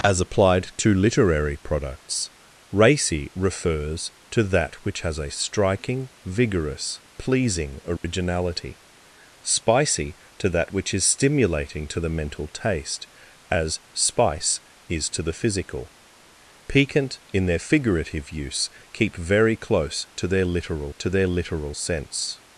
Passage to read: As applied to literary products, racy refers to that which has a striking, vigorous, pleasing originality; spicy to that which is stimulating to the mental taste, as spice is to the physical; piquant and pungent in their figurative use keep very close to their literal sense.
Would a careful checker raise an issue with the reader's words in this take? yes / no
yes